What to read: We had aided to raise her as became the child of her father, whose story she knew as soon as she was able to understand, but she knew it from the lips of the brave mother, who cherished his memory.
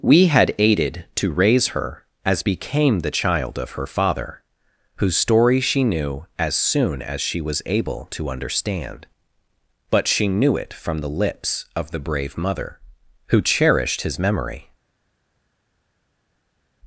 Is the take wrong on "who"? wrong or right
right